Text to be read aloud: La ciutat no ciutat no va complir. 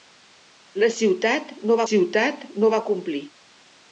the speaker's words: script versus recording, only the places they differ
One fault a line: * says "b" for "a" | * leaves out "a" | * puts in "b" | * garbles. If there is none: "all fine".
all fine